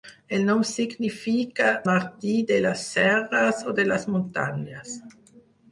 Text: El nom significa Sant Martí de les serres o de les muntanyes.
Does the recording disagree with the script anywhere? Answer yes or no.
yes